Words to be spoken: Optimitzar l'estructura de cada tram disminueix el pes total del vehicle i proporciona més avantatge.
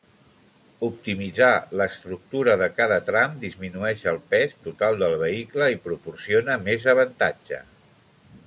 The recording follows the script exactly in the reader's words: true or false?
true